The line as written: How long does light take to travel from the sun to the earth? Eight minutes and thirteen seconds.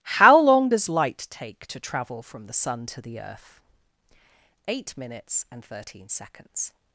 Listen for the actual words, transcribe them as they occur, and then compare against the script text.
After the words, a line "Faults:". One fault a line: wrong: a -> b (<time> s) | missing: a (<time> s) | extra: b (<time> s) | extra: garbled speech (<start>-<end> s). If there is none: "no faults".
How long does light take to travel from the sun to the earth? Eight minutes and thirteen seconds.
Faults:
no faults